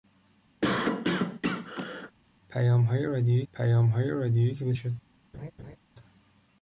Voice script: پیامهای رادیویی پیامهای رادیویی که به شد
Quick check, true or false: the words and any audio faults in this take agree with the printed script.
false